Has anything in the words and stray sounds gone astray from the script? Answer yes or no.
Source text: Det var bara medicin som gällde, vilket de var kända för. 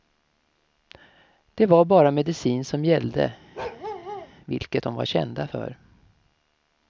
yes